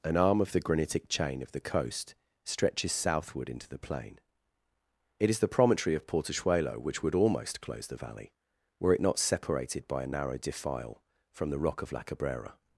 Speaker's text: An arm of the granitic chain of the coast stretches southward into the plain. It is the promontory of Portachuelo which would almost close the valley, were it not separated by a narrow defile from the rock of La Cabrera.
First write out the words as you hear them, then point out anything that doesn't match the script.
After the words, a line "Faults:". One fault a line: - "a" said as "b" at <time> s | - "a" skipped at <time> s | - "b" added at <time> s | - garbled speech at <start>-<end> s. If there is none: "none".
An arm of the granitic chain of the coast stretches southward into the plain. It is the promontory of Portachuelo which would almost close the valley, were it not separated by a narrow defile from the rock of La Cabrera.
Faults:
none